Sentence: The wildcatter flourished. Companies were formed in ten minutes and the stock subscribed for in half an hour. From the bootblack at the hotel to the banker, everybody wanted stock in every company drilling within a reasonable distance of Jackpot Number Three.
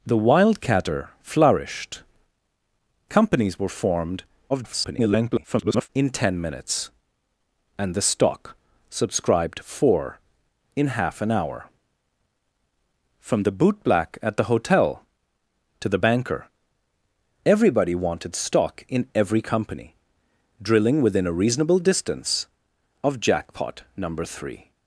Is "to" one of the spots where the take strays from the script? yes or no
no